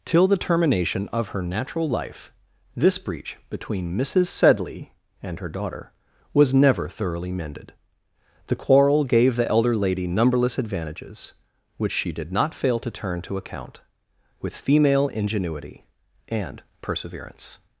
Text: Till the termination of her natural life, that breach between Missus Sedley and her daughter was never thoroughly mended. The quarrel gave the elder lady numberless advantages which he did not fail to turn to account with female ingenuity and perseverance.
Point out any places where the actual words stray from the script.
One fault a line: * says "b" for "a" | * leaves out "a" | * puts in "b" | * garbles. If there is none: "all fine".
* says "this" for "that"
* says "she" for "he"